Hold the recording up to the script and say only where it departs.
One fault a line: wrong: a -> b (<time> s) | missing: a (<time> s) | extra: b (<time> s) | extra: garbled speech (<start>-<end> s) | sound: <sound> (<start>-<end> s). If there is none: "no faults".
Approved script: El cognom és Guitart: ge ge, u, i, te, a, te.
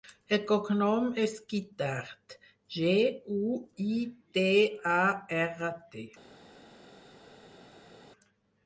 missing: ge (3.0 s)
extra: erra (5.4 s)